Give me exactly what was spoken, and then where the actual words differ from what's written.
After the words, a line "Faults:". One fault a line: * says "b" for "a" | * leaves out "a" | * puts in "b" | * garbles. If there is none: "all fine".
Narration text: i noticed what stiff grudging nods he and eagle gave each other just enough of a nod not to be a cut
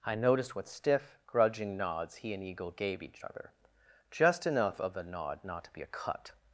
i noticed what stiff grudging nods he and eagle gave each other just enough of a nod not to be a cut
Faults:
all fine